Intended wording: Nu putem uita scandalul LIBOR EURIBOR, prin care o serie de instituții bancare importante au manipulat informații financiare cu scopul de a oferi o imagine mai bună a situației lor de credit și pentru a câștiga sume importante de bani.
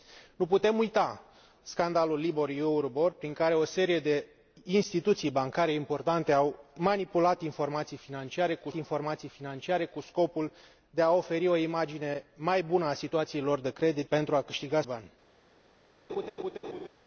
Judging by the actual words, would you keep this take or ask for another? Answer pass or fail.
fail